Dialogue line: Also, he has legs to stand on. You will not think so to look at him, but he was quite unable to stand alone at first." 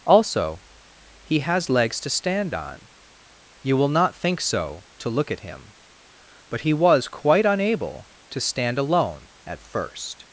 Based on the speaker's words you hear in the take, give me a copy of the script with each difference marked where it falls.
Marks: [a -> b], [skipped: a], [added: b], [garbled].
Also, he has legs to stand on. You will not think so to look at him, but he was quite unable to stand alone at first."